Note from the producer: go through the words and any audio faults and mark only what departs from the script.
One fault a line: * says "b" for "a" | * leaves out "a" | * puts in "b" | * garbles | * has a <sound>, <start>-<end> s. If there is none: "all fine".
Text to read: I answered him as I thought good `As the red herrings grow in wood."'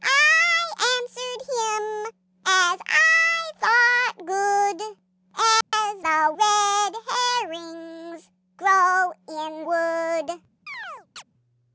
* has a dropout, 5.6-5.7 s
* has a chirp, 10.7-11.2 s